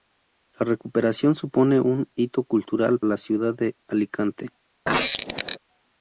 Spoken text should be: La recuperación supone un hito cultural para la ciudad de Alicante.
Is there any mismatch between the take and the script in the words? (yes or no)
yes